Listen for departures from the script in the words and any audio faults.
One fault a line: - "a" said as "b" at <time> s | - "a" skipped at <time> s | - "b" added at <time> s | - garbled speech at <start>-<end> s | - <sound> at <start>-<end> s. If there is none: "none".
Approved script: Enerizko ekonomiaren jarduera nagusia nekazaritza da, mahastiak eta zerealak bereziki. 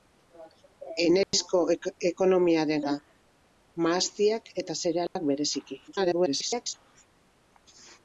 - dropout at 1.2-1.3 s
- "jarduera nagusia nekazaritza" skipped at 2.9 s
- dropout at 5.1-5.2 s
- garbled speech at 5.9-6.7 s